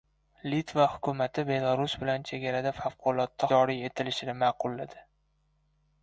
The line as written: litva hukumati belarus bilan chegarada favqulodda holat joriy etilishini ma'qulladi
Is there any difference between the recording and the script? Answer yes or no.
yes